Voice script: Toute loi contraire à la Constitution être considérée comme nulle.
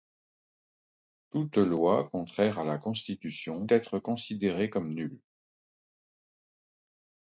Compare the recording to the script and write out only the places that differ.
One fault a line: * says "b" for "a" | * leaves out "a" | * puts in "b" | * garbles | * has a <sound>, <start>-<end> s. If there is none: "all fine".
all fine